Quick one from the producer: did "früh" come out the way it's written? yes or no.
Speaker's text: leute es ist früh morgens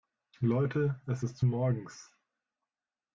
no